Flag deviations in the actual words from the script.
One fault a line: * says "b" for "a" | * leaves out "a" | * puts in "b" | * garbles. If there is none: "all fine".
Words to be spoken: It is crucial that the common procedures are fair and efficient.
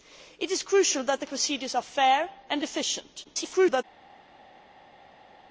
* leaves out "common"
* garbles